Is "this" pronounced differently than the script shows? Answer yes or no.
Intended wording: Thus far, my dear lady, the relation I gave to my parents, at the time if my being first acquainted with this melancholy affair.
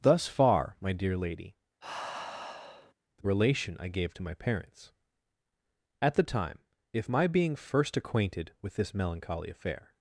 no